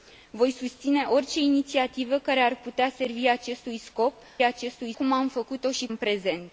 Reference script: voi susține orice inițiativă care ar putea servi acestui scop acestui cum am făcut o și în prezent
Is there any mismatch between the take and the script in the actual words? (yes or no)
no